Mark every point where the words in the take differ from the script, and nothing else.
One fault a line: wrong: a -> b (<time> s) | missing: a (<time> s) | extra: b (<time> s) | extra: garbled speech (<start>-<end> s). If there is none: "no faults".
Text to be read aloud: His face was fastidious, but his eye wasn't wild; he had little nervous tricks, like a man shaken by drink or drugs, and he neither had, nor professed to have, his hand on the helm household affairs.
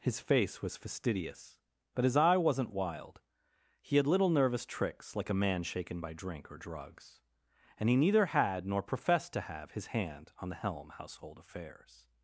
no faults